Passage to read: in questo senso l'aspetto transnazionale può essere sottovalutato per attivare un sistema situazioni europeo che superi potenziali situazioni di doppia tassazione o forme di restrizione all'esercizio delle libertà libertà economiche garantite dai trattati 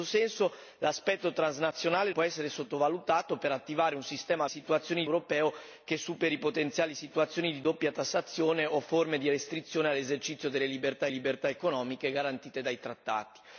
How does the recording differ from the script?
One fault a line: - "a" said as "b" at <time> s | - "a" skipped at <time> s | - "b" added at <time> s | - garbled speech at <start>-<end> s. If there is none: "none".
none